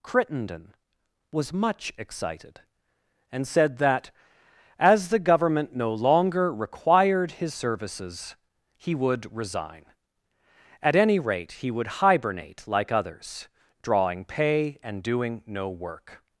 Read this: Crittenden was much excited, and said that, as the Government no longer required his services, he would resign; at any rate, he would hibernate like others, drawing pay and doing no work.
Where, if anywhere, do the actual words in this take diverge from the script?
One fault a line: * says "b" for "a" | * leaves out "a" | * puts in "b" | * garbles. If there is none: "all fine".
all fine